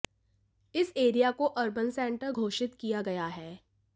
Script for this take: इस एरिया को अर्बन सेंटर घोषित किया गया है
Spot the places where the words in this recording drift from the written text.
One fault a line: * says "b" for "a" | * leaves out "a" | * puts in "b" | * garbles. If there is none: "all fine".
all fine